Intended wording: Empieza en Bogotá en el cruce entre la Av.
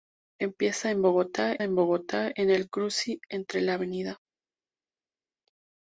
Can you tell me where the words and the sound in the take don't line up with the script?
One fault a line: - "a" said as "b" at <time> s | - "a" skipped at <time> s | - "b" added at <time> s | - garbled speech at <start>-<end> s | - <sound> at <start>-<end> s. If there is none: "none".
- "Bogotá en" added at 1.8 s